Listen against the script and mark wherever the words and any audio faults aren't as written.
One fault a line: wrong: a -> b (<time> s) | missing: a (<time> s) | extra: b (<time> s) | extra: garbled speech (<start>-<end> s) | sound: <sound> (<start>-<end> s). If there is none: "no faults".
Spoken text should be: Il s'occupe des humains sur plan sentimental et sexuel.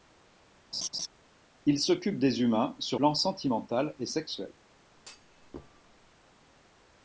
sound: laugh (0.7-1.1 s)
sound: thud (5.0-6.2 s)